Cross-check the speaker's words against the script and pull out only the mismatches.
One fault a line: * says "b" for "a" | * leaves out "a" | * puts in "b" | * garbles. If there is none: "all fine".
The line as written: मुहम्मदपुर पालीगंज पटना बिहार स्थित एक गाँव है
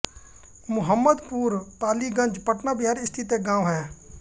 all fine